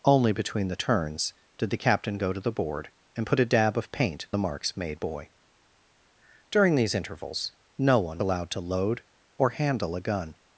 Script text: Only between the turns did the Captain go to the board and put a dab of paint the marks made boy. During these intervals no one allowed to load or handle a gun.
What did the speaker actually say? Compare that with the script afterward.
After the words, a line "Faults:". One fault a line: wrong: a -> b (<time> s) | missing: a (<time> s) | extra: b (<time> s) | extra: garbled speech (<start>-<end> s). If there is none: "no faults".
Only between the turns did the Captain go to the board and put a dab of paint the marks made boy. During these intervals no one allowed to load or handle a gun.
Faults:
no faults